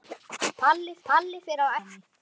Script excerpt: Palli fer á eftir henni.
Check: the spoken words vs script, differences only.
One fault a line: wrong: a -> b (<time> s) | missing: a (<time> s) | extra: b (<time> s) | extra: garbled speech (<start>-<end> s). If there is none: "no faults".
extra: palli (1.1 s)
missing: eftir (1.7 s)